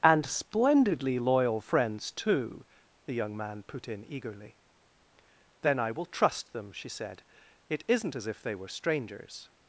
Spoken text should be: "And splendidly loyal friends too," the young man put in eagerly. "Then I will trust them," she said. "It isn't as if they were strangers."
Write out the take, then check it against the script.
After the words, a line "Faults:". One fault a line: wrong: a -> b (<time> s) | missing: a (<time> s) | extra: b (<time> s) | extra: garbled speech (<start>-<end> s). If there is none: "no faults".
"And splendidly loyal friends too," the young man put in eagerly. "Then I will trust them," she said. "It isn't as if they were strangers."
Faults:
no faults